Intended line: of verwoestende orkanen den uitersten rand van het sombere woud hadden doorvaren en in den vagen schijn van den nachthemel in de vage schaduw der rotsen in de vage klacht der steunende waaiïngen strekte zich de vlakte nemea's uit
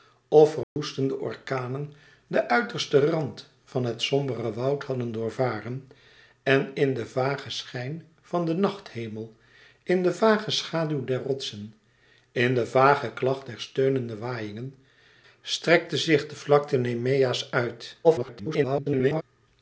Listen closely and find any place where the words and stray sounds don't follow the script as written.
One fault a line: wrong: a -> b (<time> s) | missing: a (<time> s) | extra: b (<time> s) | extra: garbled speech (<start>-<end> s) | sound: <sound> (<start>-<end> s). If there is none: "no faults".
sound: dropout (0.6-0.8 s)
extra: garbled speech (18.0-19.2 s)